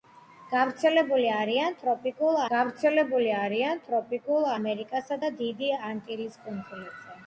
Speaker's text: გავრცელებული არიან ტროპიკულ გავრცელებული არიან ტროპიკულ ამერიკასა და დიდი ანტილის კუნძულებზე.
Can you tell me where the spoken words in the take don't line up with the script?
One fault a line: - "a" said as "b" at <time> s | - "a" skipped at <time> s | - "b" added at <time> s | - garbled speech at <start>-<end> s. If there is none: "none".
none